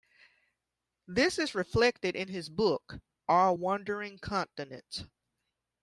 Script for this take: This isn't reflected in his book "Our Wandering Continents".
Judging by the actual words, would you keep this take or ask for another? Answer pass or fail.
fail